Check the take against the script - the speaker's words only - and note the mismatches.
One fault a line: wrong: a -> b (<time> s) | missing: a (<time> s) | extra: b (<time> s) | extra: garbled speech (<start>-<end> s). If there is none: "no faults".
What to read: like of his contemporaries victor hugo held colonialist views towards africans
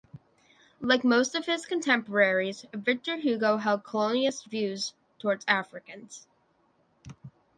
extra: most (1.0 s)